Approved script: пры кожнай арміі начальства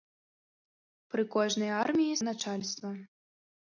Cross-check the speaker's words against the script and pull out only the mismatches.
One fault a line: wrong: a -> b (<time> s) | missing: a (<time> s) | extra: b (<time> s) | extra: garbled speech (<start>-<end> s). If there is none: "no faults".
no faults